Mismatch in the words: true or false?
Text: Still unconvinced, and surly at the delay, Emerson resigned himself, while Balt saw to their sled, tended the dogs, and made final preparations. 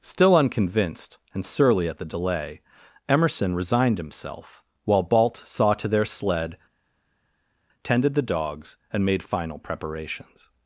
false